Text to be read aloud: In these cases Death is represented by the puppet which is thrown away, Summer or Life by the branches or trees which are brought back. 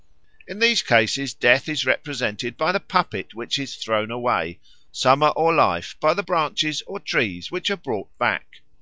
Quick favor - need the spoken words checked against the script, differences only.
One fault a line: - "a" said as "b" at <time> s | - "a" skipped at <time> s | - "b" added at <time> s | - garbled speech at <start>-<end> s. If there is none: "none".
none